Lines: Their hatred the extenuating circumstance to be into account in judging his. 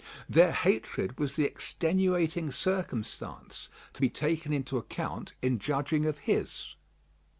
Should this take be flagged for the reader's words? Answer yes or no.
yes